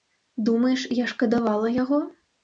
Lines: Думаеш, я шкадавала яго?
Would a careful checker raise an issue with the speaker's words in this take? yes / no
no